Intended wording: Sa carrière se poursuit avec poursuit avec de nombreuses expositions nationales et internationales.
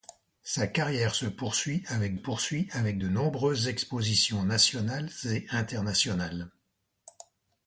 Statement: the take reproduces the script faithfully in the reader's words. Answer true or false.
true